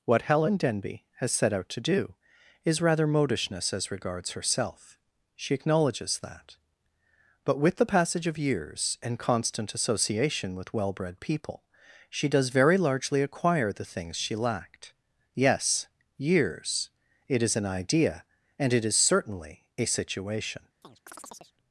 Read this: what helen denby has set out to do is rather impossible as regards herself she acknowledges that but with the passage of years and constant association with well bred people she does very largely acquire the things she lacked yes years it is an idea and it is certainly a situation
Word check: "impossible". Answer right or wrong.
wrong